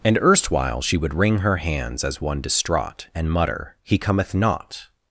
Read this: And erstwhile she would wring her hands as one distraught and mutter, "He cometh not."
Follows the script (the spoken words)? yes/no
yes